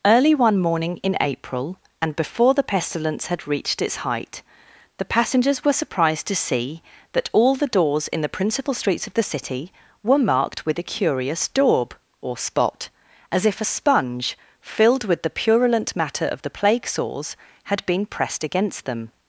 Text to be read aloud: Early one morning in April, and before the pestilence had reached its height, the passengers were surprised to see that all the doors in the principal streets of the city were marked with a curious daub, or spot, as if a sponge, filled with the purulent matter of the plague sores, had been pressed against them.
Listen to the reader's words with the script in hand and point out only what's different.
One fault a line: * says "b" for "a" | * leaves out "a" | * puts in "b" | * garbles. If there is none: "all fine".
all fine